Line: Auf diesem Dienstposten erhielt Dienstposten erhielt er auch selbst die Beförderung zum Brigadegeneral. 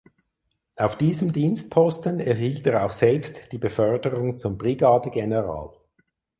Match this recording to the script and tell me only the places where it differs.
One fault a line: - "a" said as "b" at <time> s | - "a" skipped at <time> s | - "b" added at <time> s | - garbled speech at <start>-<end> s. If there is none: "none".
- "Dienstposten erhielt" skipped at 2.6 s